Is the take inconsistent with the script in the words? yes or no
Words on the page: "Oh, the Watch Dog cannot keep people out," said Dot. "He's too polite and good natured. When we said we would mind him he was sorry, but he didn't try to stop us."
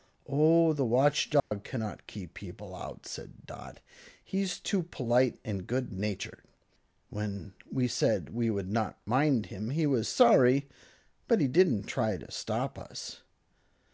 yes